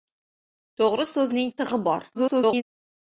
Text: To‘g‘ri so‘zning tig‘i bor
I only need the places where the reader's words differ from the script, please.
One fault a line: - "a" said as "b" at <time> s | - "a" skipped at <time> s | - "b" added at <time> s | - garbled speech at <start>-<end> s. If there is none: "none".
- garbled speech at 2.1-2.6 s